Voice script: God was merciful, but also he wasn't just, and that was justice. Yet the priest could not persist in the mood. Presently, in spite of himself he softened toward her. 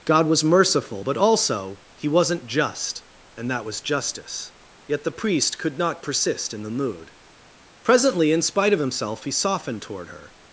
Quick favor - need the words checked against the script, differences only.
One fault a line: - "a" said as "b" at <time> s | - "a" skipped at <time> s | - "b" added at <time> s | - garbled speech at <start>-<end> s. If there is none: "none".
none